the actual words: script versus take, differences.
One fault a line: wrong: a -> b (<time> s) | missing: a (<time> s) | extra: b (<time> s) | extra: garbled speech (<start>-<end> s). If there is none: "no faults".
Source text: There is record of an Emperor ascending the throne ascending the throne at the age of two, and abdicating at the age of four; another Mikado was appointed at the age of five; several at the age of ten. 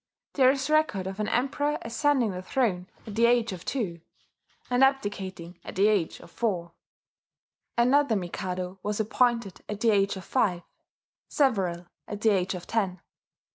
missing: ascending the throne (2.9 s)